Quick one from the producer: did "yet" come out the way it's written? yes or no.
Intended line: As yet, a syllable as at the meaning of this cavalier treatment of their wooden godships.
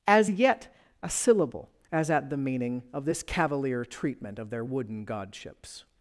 yes